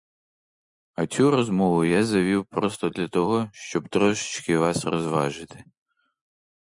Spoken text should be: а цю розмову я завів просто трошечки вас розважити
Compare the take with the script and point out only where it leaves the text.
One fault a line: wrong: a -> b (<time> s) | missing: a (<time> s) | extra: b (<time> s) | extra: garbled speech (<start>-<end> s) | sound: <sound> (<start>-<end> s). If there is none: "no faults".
extra: для того щоб (2.9 s)